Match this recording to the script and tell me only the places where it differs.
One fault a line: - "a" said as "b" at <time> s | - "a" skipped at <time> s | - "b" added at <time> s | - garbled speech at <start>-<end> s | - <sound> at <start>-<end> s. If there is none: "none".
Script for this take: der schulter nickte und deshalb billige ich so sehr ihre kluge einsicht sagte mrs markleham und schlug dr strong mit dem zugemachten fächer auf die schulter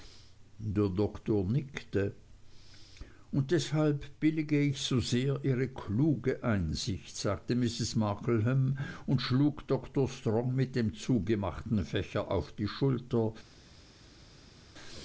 - "schulter" said as "doktor" at 0.9 s